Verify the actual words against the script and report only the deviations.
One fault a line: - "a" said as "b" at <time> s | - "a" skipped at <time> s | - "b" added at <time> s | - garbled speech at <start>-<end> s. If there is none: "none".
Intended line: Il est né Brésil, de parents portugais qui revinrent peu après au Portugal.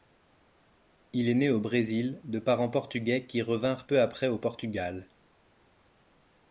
- "au" added at 1.5 s